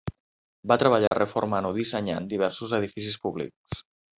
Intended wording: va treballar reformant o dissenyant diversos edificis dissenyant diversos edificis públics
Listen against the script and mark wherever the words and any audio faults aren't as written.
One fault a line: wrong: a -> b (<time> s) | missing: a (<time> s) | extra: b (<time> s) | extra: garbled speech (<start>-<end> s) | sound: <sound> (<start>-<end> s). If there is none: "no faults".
sound: dropout (1.1-1.1 s)
missing: dissenyant diversos edificis (3.2 s)